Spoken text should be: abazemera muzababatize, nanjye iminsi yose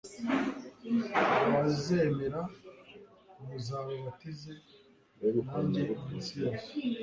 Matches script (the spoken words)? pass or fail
pass